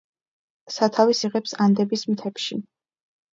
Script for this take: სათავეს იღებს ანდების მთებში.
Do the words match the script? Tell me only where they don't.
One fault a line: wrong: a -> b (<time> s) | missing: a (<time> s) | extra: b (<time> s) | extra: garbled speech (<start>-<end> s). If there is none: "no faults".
no faults